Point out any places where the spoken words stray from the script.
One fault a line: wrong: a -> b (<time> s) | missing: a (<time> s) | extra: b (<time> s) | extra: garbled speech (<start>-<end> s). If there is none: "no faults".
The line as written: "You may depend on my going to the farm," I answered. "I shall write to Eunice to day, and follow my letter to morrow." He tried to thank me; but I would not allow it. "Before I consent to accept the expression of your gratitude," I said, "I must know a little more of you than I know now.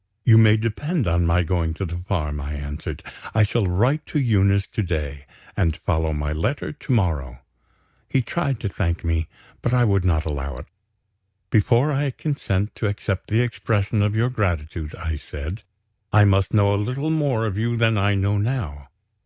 no faults